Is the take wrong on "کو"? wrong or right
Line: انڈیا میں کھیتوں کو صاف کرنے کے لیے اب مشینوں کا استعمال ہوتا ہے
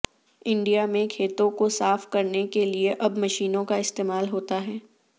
right